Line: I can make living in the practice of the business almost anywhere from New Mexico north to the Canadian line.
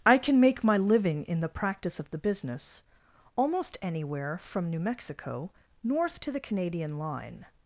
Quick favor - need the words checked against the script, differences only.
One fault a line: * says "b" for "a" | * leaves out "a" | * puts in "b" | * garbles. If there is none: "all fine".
* puts in "my"